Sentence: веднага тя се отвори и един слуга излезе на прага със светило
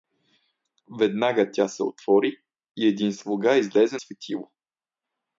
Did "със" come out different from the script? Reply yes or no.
yes